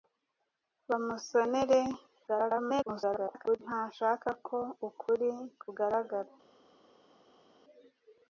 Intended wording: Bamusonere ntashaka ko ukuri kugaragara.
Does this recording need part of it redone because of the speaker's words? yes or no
yes